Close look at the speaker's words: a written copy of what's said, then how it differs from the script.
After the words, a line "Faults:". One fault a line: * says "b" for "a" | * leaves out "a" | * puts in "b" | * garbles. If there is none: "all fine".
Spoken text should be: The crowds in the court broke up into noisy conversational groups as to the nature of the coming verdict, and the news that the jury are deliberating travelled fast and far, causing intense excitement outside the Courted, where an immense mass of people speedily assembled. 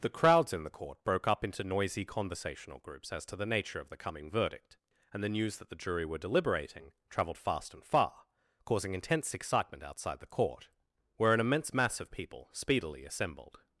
The crowds in the court broke up into noisy conversational groups as to the nature of the coming verdict, and the news that the jury were deliberating travelled fast and far, causing intense excitement outside the Court, where an immense mass of people speedily assembled.
Faults:
* says "were" for "are"
* says "Court" for "Courted"